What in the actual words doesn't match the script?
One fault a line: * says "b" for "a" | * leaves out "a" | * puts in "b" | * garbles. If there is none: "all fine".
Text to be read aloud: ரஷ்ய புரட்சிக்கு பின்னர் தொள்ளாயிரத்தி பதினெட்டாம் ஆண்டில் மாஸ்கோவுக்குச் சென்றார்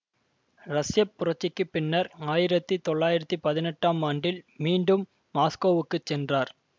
* puts in "ஆயிரத்தி"
* puts in "மீண்டும்"